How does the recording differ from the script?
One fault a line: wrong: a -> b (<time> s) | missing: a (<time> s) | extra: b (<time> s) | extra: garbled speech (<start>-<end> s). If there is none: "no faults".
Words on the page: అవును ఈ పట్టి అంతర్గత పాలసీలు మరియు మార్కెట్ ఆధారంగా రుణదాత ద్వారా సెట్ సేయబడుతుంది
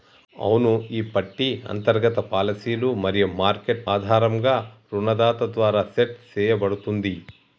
no faults